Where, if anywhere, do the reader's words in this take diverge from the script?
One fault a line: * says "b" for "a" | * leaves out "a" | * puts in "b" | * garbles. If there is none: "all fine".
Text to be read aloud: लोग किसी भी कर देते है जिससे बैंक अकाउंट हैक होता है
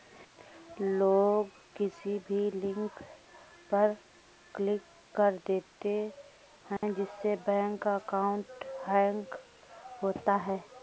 * puts in "लिंक पर क्लिक"